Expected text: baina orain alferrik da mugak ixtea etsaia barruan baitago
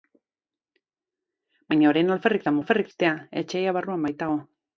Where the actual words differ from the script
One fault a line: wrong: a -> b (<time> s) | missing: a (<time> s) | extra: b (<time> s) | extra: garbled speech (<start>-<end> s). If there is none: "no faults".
wrong: mugak -> alferrik (2.6 s)